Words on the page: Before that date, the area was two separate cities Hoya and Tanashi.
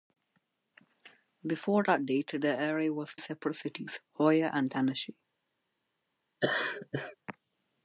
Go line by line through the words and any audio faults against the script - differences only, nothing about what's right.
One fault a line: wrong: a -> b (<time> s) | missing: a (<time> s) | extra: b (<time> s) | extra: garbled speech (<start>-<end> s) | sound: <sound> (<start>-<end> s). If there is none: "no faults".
missing: two (3.1 s)
sound: laugh (6.4-7.2 s)